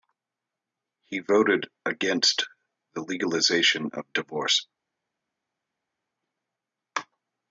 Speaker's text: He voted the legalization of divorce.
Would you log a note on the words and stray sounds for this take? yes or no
yes